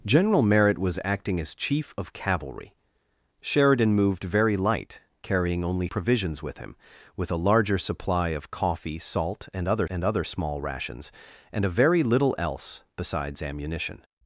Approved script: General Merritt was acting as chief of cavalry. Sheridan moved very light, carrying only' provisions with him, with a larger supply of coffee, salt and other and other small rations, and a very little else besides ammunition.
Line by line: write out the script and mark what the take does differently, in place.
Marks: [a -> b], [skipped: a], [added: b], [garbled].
General Merritt was acting as chief of cavalry. Sheridan moved very light, carrying only' provisions with him, with a larger supply of coffee, salt and other and other small rations, and a very little else besides ammunition.